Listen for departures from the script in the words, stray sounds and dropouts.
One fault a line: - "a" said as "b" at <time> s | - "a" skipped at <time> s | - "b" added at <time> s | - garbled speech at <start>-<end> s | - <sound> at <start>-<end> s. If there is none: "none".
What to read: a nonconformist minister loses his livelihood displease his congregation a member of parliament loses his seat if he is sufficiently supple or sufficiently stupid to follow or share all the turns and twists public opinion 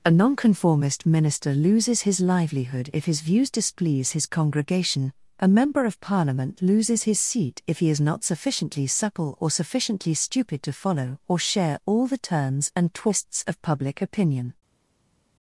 - "if his views" added at 2.9 s
- "not" added at 8.0 s
- "of" added at 13.4 s